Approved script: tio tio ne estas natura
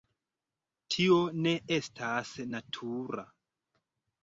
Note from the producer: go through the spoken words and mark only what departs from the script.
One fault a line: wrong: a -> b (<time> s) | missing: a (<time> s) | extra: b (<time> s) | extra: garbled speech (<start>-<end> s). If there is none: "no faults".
missing: tio (1.2 s)